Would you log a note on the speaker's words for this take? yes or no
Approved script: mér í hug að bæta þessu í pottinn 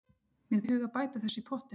no